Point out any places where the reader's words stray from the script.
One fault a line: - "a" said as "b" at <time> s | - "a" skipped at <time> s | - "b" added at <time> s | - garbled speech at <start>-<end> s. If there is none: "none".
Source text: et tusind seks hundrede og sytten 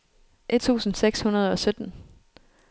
none